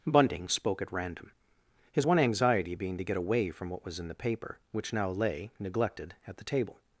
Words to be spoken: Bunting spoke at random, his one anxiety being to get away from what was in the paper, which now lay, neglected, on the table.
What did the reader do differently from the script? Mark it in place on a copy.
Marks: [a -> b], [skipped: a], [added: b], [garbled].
Bunting spoke at random, his one anxiety being to get away from what was in the paper, which now lay, neglected, [on -> at] the table.